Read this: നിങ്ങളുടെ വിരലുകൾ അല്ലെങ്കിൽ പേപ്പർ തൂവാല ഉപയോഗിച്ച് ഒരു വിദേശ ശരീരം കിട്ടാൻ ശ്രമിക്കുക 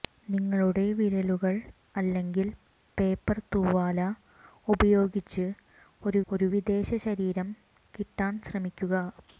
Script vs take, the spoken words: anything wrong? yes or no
yes